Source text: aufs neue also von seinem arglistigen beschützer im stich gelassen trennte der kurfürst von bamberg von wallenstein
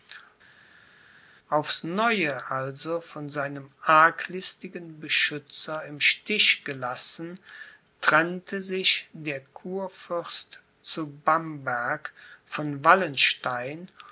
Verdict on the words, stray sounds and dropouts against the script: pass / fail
fail